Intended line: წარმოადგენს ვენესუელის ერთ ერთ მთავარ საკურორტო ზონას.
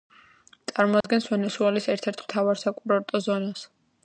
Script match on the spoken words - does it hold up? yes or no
yes